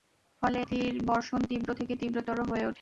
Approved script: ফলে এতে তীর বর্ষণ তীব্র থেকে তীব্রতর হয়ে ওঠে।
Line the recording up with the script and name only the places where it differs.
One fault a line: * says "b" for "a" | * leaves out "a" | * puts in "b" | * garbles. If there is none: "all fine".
* leaves out "এতে"